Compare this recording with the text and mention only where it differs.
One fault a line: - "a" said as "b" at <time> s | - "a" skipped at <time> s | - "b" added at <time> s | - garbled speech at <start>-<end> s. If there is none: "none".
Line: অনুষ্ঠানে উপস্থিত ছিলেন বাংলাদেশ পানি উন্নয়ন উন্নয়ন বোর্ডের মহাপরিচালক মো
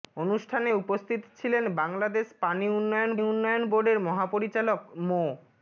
none